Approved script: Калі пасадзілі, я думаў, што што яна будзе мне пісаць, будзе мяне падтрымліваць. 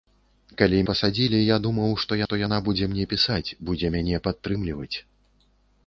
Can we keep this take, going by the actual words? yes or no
yes